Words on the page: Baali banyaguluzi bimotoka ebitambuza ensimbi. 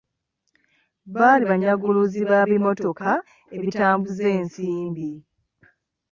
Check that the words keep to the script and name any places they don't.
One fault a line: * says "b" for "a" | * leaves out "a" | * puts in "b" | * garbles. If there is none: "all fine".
* puts in "ba"